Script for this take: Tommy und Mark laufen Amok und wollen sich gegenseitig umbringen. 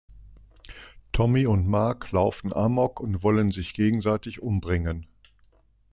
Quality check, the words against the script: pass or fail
pass